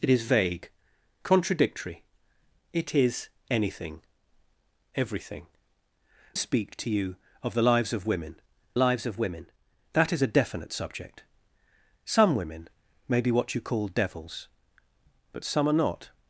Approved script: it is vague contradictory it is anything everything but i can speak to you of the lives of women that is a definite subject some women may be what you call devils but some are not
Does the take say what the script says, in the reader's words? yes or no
no